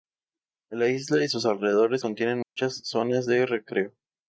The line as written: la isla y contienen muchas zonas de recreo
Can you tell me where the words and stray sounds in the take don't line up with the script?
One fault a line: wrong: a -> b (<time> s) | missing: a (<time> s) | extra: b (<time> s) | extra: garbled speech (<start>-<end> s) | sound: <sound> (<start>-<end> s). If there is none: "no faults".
extra: sus alrededores (1.3 s)
sound: dropout (2.4-2.6 s)